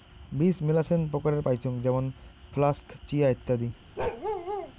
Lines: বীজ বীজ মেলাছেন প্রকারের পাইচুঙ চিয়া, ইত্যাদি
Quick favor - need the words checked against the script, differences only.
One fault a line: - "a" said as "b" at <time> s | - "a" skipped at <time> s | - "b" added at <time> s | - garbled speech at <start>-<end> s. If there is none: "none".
- "বীজ" skipped at 0.6 s
- "যেমন ফ্লাক্স" added at 1.8 s